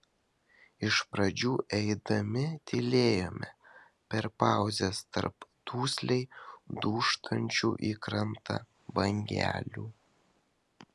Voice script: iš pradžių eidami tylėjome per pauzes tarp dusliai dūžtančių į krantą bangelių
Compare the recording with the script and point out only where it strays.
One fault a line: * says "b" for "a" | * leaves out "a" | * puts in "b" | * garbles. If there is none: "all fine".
all fine